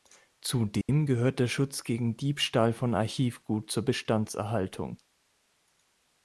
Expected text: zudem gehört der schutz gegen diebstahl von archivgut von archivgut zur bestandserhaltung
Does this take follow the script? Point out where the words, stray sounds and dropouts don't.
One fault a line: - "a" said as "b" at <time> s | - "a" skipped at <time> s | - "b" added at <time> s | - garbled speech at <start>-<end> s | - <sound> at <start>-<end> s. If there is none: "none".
- dropout at 0.8-0.9 s
- "von archivgut" skipped at 3.7 s